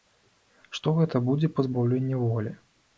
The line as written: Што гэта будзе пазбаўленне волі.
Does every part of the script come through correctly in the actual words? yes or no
yes